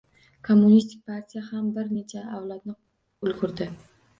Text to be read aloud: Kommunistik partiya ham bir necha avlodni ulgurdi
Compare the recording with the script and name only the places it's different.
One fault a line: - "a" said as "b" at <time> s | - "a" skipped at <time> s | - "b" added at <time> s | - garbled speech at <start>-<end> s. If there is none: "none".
none